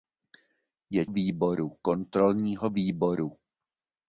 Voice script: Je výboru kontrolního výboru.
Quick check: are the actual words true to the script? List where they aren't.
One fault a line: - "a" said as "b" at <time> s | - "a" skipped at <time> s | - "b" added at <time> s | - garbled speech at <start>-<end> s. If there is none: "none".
none